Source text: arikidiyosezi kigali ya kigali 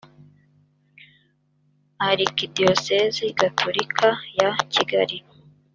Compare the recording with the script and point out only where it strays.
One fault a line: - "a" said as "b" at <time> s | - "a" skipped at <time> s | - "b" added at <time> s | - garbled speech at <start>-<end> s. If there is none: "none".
- "kigali" said as "gatolika" at 3.4 s